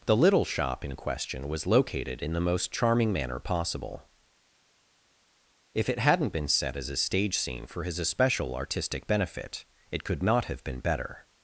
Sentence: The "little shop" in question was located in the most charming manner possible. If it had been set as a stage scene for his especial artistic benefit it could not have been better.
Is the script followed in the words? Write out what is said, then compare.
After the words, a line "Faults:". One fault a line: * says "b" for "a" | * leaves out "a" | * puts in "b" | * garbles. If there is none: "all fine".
The "little shop" in question was located in the most charming manner possible. If it hadn't been set as a stage scene for his especial artistic benefit it could not have been better.
Faults:
* says "hadn't" for "had"